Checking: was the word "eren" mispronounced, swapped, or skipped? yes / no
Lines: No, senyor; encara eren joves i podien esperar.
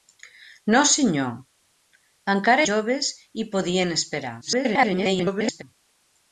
yes